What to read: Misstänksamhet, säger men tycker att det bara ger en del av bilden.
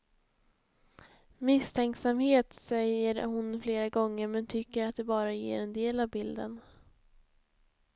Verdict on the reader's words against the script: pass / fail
fail